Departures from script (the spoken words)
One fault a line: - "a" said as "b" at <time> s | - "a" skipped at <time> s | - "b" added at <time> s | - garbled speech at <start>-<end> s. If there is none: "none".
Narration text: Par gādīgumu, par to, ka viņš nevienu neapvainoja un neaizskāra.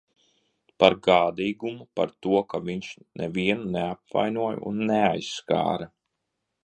none